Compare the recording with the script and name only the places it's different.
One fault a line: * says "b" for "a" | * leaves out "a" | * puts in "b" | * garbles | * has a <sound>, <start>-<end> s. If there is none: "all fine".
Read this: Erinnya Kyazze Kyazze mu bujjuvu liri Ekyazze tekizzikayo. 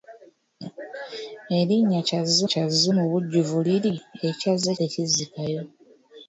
all fine